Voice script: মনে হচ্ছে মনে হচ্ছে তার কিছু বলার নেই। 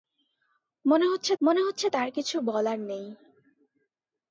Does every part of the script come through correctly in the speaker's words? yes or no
yes